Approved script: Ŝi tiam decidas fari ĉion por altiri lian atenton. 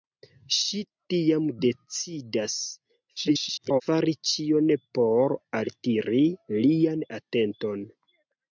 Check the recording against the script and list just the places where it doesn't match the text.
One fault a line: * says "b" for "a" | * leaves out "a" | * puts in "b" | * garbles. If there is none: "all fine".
* garbles